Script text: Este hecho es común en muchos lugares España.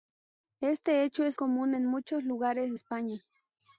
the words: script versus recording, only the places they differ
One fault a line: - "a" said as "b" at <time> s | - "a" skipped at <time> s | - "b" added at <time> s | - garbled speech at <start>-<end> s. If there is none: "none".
none